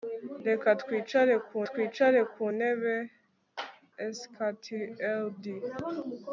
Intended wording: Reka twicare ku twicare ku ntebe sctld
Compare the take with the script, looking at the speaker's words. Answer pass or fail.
pass